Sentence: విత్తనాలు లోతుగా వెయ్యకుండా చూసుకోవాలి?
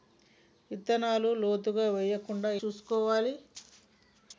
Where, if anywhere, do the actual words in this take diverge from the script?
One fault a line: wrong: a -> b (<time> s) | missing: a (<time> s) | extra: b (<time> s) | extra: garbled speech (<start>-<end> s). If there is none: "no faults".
no faults